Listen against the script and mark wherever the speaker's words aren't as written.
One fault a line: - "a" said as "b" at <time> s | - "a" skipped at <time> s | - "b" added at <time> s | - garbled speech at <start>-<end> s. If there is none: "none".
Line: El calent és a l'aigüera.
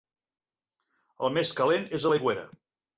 - "més" added at 1.4 s